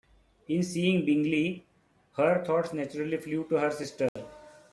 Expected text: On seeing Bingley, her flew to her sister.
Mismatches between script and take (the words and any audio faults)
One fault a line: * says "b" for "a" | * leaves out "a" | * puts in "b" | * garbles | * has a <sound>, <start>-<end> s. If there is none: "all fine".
* says "In" for "On"
* puts in "thoughts naturally"
* has a dropout, 4.1-4.2 s